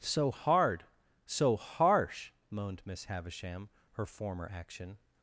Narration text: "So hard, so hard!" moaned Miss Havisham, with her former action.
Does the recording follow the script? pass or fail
fail